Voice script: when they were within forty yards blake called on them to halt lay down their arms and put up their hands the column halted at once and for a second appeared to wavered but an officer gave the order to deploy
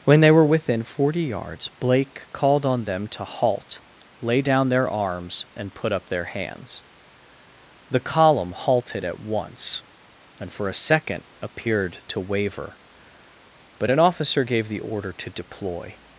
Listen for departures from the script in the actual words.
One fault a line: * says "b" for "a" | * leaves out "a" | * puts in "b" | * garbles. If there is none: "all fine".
* says "waver" for "wavered"